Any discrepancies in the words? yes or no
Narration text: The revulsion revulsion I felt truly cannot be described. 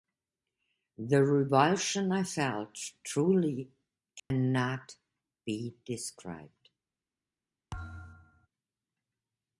yes